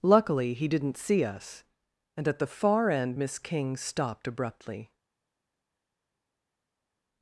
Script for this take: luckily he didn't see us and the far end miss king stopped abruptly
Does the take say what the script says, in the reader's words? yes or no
no